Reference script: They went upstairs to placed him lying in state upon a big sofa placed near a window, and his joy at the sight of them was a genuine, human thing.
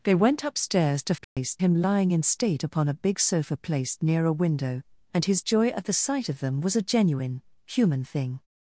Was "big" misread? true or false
false